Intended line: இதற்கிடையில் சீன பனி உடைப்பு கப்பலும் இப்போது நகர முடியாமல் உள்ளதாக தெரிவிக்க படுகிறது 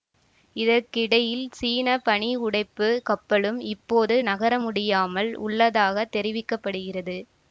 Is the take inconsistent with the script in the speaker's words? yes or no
no